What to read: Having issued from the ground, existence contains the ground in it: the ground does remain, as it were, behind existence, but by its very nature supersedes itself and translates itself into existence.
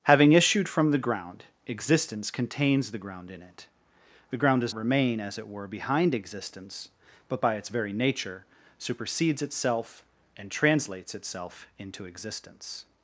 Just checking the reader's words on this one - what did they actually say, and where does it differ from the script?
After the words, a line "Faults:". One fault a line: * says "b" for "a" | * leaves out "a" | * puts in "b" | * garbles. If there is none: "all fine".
Having issued from the ground, existence contains the ground in it: the ground does remain, as it were, behind existence, but by its very nature supersedes itself and translates itself into existence.
Faults:
all fine